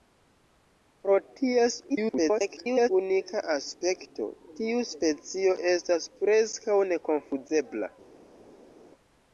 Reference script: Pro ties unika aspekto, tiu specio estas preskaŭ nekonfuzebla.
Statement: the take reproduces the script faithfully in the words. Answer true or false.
false